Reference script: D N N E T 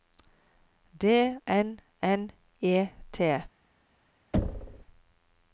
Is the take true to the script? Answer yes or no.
yes